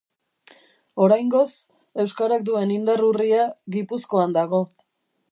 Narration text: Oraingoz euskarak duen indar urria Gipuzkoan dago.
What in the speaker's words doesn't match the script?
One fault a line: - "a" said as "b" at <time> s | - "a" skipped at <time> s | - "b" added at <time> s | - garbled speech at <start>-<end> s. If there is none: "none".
none